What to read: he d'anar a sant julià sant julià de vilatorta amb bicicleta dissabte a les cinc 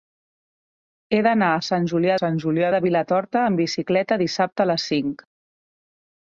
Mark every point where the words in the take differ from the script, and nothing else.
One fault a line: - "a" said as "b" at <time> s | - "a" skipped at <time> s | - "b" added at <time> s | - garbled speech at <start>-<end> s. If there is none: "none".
none